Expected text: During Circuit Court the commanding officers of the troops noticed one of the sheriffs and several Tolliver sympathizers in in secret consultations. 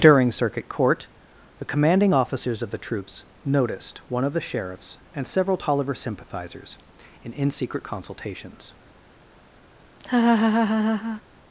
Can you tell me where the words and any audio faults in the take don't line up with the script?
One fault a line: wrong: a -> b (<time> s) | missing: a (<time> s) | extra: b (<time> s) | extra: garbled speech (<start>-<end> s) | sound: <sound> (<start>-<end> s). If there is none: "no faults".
sound: laugh (10.0-11.2 s)